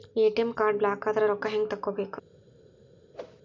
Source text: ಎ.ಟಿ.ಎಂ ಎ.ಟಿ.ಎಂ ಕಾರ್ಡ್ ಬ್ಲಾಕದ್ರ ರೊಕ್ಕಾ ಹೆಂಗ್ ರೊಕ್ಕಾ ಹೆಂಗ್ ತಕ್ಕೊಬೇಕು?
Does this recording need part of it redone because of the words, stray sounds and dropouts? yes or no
yes